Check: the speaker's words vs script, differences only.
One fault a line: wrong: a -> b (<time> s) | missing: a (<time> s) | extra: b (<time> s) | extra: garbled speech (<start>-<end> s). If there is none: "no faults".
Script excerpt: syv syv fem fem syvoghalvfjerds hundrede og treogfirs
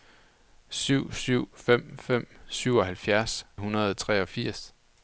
no faults